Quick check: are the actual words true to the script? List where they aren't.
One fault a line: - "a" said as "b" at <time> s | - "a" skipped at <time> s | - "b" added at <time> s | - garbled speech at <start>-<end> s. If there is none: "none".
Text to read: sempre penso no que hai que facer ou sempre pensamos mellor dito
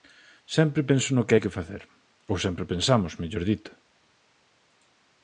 none